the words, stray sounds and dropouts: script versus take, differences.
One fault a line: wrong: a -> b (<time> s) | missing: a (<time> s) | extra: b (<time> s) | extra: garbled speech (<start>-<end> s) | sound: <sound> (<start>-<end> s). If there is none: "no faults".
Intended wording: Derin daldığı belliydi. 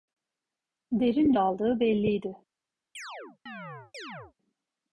sound: chirp (2.9-4.3 s)